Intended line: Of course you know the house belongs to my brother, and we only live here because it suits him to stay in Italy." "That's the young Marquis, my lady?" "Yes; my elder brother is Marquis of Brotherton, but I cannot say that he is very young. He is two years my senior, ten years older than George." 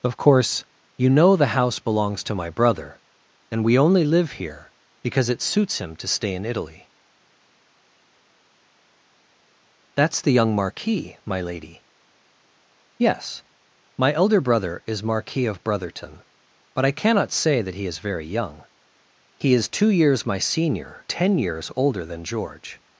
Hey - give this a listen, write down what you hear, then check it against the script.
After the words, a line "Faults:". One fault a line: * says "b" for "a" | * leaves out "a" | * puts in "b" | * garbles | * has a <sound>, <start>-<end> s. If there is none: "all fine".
Of course you know the house belongs to my brother, and we only live here because it suits him to stay in Italy." "That's the young Marquis, my lady?" "Yes; my elder brother is Marquis of Brotherton, but I cannot say that he is very young. He is two years my senior, ten years older than George."
Faults:
all fine